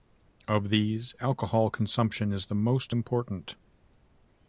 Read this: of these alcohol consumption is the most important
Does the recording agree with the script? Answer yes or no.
yes